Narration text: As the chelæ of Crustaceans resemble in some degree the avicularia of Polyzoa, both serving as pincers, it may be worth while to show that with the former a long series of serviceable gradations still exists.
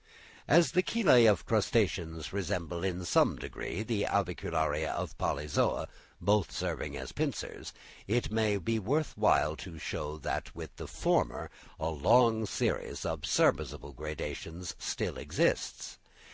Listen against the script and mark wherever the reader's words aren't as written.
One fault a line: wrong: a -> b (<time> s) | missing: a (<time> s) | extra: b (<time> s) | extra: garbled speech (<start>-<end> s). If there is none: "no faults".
no faults